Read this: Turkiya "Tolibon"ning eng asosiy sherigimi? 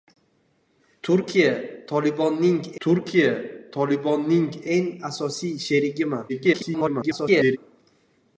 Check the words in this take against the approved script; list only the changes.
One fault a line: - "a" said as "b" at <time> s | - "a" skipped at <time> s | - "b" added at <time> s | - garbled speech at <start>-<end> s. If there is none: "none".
- "turkiya Tolibon"ning" added at 2.8 s
- garbled speech at 6.3-7.6 s